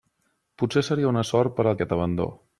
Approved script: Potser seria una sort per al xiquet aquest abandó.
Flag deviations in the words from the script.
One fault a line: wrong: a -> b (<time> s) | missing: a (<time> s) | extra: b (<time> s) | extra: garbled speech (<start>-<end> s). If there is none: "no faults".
missing: xiquet (1.8 s)